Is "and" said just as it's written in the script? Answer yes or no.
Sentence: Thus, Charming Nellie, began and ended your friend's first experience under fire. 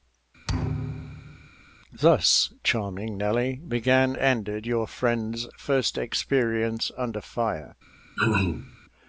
no